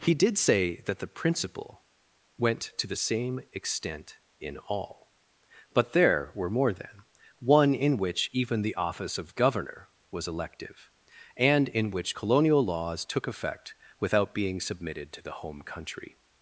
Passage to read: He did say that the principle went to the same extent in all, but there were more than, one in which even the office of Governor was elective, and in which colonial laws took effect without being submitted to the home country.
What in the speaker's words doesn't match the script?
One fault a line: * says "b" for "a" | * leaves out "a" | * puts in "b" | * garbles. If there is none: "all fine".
all fine